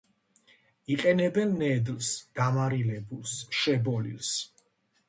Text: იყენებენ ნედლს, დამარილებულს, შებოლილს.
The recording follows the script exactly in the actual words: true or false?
true